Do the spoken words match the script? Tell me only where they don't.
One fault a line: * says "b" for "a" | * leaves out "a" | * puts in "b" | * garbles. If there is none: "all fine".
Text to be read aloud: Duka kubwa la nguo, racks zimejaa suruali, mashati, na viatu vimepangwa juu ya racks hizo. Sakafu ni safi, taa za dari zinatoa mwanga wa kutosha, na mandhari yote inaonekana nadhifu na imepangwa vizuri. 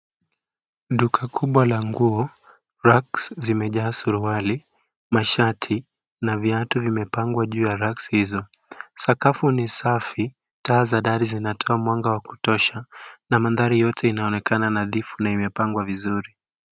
all fine